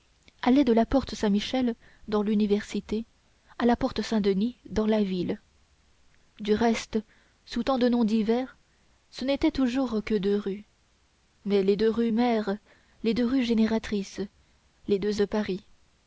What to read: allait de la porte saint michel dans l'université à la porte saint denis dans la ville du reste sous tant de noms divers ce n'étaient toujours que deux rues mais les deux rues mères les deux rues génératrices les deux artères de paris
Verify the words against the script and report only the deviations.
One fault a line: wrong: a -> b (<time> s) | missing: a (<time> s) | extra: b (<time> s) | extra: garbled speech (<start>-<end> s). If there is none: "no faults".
missing: artères (15.2 s)